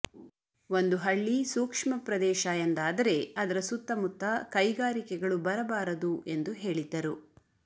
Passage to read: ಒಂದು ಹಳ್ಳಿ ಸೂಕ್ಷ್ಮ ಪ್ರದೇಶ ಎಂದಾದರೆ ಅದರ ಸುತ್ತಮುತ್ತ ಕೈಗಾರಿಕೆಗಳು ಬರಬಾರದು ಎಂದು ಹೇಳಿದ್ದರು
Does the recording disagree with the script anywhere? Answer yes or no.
no